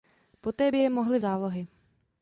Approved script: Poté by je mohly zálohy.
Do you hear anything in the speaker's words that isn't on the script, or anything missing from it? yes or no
no